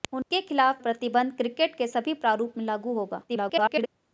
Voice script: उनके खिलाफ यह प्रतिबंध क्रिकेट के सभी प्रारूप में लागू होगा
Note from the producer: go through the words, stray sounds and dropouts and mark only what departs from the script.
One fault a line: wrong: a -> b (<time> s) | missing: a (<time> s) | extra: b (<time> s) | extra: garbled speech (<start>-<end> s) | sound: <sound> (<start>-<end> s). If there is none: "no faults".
sound: dropout (0.2-0.3 s)
missing: यह (0.8 s)
extra: garbled speech (3.3-3.9 s)